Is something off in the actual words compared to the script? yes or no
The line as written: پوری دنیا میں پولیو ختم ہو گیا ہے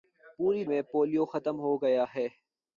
yes